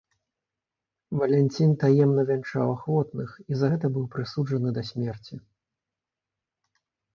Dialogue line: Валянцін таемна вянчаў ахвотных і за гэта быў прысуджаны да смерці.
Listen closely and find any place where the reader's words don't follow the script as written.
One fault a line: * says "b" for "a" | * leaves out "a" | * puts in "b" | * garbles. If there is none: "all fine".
all fine